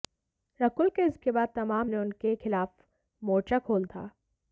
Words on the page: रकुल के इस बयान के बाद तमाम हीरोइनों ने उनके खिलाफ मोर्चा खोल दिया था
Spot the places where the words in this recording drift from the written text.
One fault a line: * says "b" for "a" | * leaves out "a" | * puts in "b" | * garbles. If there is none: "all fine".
* leaves out "बयान"
* leaves out "हीरोइनों"
* leaves out "दिया"